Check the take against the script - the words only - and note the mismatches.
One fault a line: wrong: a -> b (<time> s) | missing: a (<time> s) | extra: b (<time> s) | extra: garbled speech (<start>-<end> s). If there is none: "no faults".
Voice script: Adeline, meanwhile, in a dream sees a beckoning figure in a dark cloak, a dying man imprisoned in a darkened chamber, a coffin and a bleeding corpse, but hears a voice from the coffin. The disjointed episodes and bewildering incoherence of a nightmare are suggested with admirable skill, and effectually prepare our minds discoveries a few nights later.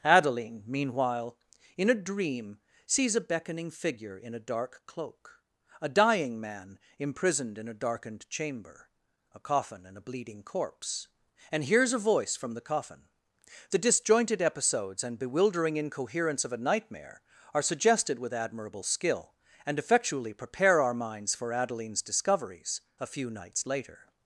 wrong: but -> and (11.5 s)
extra: for Adeline's (21.4 s)